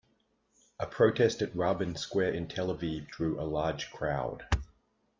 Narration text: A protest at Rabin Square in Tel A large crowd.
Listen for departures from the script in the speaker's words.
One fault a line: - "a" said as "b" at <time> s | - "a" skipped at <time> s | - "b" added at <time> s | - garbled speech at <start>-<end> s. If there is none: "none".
- "Aviv drew" added at 2.7 s